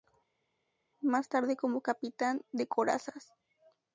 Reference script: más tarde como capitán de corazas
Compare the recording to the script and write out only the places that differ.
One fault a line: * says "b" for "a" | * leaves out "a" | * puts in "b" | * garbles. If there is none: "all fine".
all fine